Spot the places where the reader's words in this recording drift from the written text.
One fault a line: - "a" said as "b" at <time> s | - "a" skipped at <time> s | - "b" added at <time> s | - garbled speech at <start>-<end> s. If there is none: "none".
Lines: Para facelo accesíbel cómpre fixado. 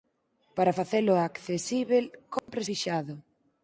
none